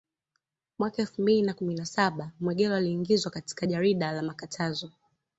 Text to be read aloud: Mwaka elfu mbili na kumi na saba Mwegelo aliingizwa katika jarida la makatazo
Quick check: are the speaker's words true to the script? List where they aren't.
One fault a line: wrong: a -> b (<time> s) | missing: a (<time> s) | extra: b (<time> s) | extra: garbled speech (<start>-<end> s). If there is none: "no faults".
no faults